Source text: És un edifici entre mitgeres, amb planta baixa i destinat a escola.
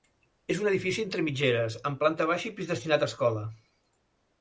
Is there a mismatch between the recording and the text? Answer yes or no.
yes